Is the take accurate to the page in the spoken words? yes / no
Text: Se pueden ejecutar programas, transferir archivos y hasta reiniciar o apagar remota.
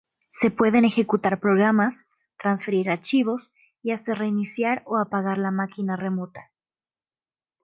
no